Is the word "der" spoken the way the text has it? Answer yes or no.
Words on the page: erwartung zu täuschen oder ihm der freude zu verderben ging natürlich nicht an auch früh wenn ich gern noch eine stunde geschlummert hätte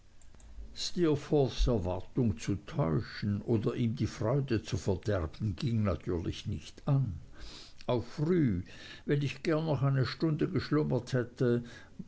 no